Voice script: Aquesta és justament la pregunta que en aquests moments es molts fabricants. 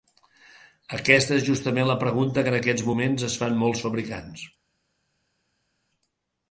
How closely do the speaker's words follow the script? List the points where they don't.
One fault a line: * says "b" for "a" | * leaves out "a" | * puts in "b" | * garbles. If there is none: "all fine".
* puts in "fan"